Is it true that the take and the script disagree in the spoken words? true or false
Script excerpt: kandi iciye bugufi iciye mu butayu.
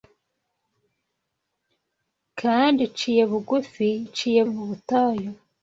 false